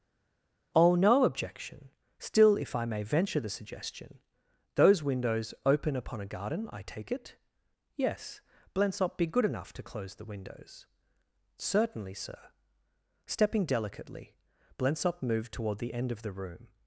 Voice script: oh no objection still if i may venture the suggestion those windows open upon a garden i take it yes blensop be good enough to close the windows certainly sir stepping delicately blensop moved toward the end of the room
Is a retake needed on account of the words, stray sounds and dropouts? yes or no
no